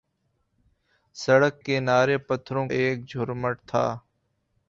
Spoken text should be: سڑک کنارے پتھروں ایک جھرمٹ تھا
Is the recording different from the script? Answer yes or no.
no